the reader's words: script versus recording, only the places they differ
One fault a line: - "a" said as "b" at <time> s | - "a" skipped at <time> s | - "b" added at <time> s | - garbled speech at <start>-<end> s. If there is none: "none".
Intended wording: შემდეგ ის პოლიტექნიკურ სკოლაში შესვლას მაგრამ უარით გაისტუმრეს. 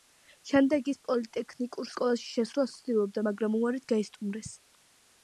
- "ცდილობდა" added at 2.8 s